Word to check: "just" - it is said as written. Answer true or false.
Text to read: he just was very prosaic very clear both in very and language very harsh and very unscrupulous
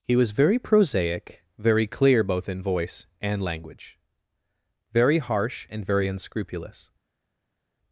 false